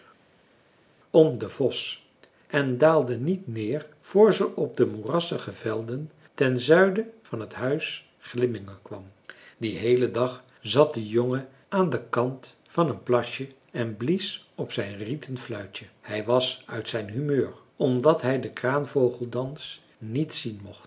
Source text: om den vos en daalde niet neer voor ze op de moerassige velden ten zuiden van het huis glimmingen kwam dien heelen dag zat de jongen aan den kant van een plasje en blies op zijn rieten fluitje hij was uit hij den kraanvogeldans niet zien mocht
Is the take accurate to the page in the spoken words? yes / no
no